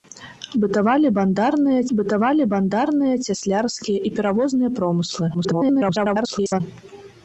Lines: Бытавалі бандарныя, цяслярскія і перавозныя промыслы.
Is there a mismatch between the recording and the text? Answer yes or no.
yes